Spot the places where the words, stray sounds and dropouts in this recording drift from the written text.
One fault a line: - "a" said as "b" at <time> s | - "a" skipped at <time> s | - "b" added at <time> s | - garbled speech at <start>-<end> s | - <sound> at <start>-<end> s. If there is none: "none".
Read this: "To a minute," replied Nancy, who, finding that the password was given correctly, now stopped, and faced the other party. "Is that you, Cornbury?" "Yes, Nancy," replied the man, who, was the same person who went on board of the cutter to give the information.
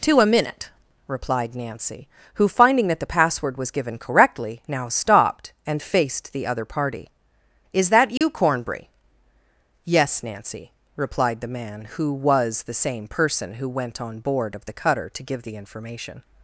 - dropout at 8.2-8.2 s